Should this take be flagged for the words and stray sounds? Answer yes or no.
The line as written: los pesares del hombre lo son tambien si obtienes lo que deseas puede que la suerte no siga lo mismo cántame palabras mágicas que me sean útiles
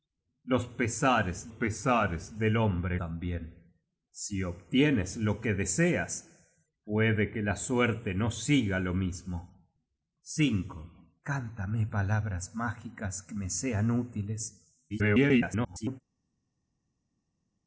yes